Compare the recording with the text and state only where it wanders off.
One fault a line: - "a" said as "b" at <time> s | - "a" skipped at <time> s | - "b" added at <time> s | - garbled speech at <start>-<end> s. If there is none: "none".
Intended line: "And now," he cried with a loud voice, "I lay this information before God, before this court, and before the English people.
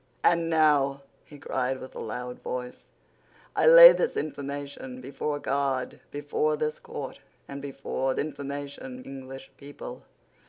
- "the" said as "information" at 8.2 s